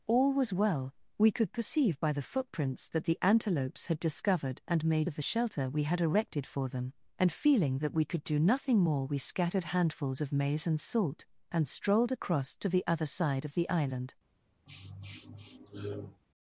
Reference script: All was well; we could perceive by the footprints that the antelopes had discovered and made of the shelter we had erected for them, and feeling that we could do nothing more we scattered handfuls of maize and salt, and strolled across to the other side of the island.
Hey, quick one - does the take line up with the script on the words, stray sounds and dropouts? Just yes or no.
no